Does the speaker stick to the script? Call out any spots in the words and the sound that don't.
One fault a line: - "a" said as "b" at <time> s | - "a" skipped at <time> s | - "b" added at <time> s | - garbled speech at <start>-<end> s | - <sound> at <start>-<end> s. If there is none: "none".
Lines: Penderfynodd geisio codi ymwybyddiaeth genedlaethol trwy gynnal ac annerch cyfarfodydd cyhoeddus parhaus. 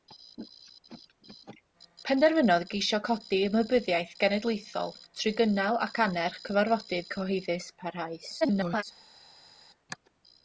- garbled speech at 8.4-8.8 s